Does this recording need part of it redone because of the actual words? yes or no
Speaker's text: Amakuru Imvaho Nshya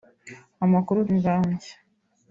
no